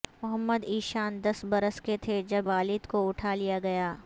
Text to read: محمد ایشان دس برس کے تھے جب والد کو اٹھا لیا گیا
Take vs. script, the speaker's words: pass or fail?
pass